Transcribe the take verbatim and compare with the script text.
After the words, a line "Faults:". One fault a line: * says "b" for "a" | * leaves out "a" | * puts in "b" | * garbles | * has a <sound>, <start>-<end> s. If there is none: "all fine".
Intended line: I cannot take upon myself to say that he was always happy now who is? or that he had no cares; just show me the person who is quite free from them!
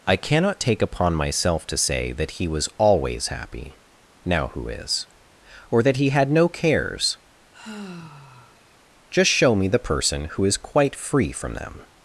I cannot take upon myself to say that he was always happy now who is? or that he had no cares; just show me the person who is quite free from them!
Faults:
* has a sigh, 7.5-8.7 s